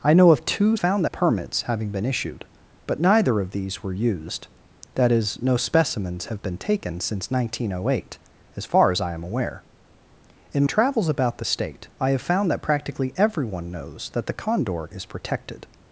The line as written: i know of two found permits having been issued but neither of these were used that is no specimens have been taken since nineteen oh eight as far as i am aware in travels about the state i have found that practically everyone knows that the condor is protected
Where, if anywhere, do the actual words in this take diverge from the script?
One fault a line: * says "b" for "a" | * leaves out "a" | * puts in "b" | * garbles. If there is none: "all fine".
all fine